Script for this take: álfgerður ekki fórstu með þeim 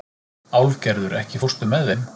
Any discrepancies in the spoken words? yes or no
no